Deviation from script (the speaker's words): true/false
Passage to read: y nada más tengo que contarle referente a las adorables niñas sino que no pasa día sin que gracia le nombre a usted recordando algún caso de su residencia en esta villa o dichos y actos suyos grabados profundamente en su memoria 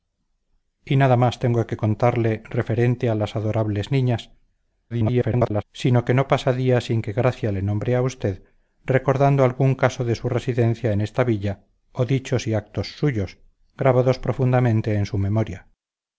true